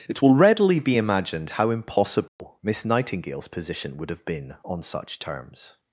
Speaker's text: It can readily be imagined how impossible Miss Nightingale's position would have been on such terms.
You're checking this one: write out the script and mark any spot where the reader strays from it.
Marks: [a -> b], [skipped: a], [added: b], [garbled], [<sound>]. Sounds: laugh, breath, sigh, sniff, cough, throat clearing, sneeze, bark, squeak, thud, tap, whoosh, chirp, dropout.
It [can -> will] readily be imagined how impossible [dropout] Miss Nightingale's position would have been on such terms.